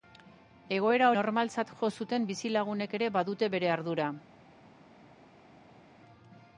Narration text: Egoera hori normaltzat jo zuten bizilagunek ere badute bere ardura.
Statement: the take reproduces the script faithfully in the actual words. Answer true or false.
false